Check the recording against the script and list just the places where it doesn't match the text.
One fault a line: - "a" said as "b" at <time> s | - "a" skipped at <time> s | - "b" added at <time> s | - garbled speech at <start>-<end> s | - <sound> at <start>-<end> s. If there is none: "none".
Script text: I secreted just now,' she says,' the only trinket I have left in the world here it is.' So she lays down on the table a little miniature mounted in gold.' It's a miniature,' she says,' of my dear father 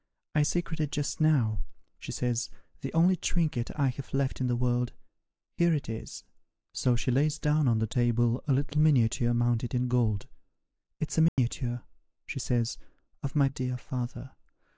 - dropout at 11.3-11.4 s